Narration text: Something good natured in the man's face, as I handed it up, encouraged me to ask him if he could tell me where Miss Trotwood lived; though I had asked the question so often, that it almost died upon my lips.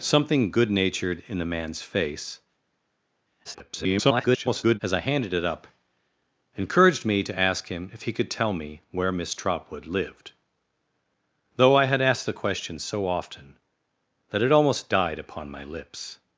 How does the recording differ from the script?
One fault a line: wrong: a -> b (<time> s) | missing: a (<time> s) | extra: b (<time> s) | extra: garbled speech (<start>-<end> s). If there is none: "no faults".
extra: garbled speech (3.4-4.8 s)